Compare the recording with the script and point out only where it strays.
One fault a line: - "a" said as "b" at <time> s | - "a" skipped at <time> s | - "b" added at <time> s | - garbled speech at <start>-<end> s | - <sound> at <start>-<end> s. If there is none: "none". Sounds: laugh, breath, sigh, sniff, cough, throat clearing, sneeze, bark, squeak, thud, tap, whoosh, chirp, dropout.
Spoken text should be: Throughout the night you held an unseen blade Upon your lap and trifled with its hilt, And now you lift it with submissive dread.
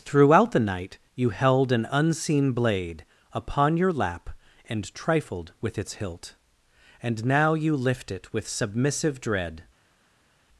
none